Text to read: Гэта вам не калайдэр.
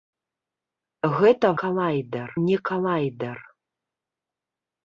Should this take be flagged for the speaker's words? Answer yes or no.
yes